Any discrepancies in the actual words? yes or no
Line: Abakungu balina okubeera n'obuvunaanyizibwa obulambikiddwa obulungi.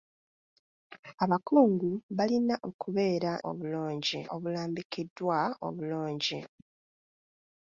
yes